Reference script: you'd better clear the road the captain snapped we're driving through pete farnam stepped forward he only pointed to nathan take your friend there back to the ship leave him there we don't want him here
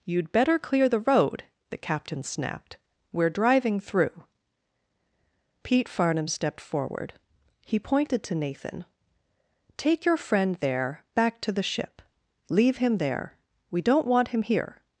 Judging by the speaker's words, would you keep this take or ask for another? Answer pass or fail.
fail